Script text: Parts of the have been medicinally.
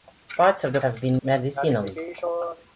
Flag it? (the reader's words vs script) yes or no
no